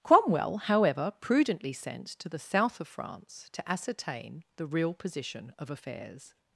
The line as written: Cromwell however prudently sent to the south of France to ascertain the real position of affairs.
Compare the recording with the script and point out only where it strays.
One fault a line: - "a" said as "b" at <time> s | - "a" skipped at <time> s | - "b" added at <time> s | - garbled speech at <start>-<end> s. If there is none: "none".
none